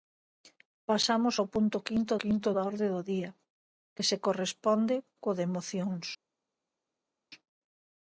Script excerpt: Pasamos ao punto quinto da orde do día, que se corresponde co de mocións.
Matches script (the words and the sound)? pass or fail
fail